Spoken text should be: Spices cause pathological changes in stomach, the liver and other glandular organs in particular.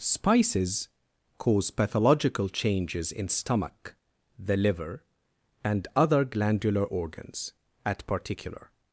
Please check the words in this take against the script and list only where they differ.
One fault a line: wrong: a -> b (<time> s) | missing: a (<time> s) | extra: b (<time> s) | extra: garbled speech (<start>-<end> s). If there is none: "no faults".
wrong: in -> at (7.8 s)